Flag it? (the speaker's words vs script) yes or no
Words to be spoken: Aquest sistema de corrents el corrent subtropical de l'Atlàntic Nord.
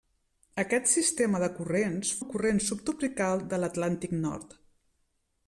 no